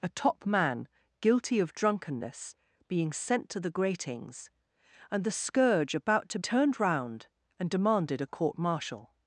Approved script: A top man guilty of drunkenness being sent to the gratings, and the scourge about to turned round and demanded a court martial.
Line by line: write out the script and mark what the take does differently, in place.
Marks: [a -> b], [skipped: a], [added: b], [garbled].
A top man guilty of drunkenness being sent to the gratings, and the scourge about to turned round and demanded a court martial.